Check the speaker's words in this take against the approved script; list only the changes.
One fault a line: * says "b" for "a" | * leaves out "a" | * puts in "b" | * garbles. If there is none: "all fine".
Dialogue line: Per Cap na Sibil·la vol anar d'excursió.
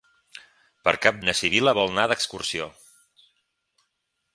all fine